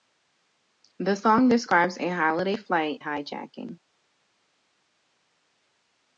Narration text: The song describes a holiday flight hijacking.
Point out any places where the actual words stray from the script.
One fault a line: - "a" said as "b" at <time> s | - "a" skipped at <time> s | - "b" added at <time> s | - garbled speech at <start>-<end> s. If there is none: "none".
none